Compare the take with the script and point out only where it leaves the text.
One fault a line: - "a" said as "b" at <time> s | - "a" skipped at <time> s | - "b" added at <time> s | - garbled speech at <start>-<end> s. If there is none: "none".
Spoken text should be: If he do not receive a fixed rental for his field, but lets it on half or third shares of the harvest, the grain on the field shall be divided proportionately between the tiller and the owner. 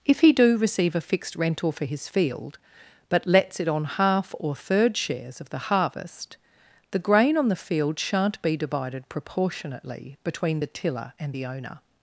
- "not" skipped at 0.6 s
- "shall" said as "shan't" at 8.0 s